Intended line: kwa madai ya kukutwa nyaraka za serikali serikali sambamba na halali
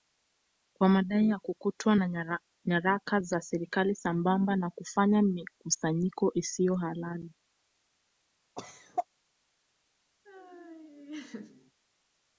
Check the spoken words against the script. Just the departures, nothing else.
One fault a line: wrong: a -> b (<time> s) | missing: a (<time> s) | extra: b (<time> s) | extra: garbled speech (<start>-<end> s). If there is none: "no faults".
extra: na (1.9 s)
missing: serikali (4.0 s)
extra: kufanya mikusanyiko isiyo (4.7 s)